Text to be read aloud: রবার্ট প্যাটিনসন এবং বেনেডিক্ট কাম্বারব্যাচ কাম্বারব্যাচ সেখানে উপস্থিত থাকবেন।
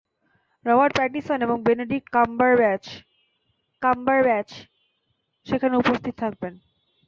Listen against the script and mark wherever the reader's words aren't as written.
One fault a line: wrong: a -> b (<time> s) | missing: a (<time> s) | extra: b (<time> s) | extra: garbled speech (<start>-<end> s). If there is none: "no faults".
no faults